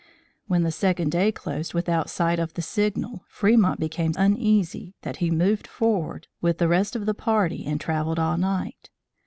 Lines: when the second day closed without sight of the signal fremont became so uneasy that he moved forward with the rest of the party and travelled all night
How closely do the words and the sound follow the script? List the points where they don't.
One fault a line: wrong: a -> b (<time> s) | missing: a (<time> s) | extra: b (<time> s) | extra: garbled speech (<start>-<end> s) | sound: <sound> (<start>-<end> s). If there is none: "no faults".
missing: so (4.1 s)